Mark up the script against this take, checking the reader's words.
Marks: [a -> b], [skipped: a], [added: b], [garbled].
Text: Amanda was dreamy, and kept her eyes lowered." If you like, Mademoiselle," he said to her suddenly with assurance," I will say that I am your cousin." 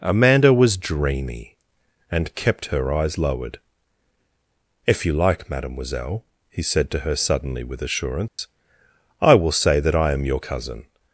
Amanda was dreamy, and kept her eyes lowered." If you like, Mademoiselle," he said to her suddenly with assurance," I will say that I am your cousin."